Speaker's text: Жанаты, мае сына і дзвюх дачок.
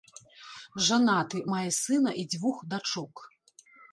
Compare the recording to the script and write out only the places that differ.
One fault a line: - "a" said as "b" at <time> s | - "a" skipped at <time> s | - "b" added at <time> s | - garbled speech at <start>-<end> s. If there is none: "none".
none